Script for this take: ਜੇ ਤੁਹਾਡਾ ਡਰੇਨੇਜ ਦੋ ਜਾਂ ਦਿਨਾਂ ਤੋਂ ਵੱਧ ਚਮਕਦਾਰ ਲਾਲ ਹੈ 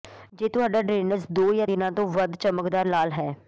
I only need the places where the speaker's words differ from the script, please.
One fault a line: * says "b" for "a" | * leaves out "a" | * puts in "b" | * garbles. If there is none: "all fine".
all fine